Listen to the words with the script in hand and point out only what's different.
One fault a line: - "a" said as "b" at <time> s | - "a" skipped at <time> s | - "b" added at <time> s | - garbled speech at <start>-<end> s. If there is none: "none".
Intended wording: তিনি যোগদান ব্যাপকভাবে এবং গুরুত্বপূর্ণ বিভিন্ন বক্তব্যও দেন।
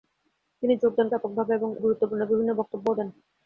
none